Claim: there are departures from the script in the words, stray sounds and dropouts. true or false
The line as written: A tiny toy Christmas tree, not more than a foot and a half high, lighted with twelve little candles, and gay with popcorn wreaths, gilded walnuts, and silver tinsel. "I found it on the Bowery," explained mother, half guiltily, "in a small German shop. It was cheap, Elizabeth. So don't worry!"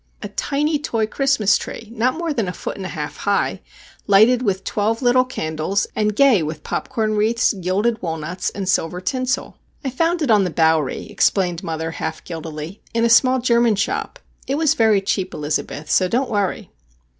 true